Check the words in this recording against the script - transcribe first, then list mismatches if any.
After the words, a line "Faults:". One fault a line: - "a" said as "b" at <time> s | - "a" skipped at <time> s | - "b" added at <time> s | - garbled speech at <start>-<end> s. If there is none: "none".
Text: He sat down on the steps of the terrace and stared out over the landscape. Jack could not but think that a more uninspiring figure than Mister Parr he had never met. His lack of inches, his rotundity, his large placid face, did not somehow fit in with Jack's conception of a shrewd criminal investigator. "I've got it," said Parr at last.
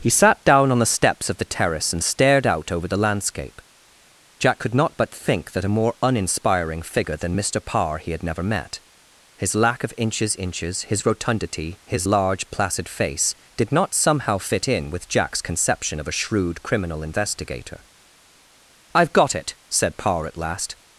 He sat down on the steps of the terrace and stared out over the landscape. Jack could not but think that a more uninspiring figure than Mister Parr he had never met. His lack of inches inches, his rotundity, his large placid face, did not somehow fit in with Jack's conception of a shrewd criminal investigator. "I've got it," said Parr at last.
Faults:
- "inches" added at 10.4 s